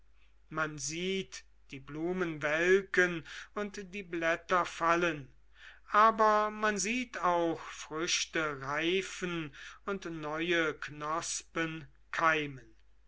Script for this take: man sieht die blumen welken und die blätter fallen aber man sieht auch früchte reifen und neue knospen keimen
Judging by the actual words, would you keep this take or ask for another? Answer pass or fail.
pass